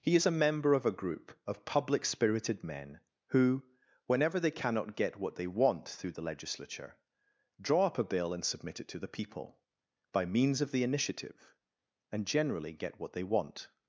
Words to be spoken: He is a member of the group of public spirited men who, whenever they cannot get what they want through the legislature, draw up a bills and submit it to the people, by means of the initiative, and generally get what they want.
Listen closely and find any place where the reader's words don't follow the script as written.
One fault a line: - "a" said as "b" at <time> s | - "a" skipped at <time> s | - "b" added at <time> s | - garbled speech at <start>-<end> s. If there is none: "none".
- "the" said as "a" at 0.8 s
- "bills" said as "bill" at 8.0 s